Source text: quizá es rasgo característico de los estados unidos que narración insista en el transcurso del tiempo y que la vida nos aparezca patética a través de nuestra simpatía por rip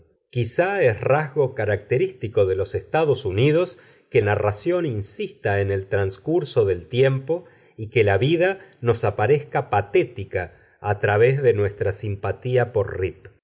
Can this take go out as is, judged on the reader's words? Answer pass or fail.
pass